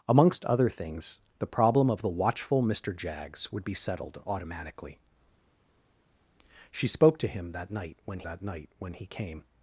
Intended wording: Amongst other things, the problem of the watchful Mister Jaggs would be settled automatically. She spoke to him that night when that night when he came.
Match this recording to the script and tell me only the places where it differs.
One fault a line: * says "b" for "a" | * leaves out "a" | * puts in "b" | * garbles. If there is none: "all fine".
all fine